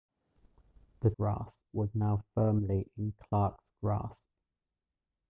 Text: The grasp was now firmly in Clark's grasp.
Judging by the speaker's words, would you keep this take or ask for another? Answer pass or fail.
pass